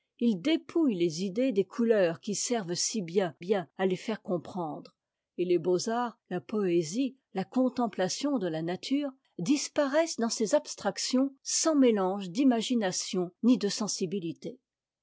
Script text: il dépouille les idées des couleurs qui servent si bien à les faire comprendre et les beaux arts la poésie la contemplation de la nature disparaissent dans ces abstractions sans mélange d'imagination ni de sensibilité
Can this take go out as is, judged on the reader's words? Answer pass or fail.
fail